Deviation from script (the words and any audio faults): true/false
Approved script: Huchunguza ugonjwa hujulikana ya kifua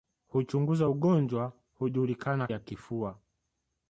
false